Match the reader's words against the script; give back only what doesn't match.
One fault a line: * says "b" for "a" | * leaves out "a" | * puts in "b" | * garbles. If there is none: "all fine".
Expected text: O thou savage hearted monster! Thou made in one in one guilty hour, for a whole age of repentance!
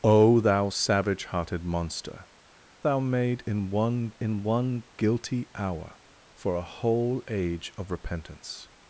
all fine